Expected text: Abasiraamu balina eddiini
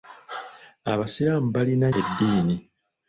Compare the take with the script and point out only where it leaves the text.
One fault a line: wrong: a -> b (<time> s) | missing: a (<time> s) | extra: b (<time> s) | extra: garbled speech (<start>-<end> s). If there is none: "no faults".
no faults